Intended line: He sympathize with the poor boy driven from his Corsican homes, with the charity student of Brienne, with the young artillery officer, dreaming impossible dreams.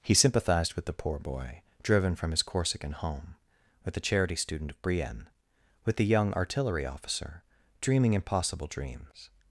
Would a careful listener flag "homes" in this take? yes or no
yes